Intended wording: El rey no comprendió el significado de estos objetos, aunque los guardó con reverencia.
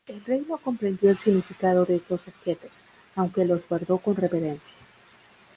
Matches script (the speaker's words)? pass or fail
pass